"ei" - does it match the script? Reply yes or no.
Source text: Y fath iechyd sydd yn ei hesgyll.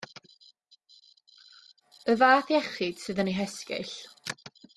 yes